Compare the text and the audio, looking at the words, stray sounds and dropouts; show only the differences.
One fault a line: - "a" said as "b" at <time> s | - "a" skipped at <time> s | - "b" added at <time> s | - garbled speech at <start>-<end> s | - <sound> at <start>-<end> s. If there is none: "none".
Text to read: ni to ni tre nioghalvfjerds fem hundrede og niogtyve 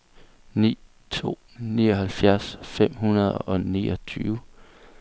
- "ni tre" skipped at 1.3 s